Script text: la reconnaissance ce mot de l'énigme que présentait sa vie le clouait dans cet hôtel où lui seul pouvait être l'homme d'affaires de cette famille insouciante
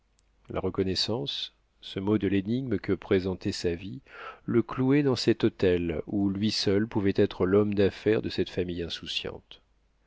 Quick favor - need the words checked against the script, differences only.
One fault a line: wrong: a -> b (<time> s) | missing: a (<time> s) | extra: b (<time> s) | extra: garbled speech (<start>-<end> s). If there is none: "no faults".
no faults